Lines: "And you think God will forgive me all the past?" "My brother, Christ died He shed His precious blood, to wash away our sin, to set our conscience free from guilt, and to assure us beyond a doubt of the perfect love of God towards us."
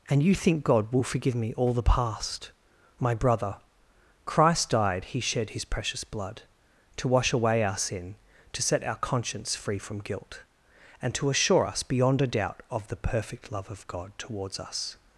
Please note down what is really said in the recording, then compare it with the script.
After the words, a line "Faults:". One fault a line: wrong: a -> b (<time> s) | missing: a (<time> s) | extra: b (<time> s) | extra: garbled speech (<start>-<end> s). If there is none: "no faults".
"And you think God will forgive me all the past?" "My brother, Christ died He shed His precious blood, to wash away our sin, to set our conscience free from guilt, and to assure us beyond a doubt of the perfect love of God towards us."
Faults:
no faults